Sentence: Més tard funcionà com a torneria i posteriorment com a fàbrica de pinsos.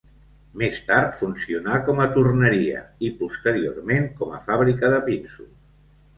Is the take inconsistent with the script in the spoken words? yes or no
no